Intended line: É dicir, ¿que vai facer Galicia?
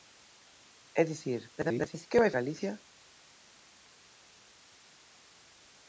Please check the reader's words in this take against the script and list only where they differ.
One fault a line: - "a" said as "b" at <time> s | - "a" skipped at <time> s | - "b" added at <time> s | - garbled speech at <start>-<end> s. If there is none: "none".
- garbled speech at 1.6-2.1 s
- "facer" skipped at 2.3 s